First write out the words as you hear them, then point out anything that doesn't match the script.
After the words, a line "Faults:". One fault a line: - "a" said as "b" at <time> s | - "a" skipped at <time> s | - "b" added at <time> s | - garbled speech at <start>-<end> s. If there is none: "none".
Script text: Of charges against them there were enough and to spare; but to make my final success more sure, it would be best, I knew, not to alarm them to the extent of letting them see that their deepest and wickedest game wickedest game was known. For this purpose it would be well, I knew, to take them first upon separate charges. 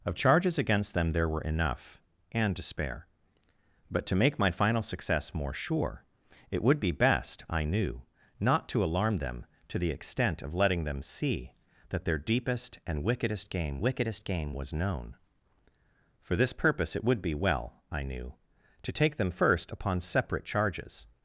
Of charges against them there were enough and to spare; but to make my final success more sure, it would be best, I knew, not to alarm them to the extent of letting them see that their deepest and wickedest game wickedest game was known. For this purpose it would be well, I knew, to take them first upon separate charges.
Faults:
none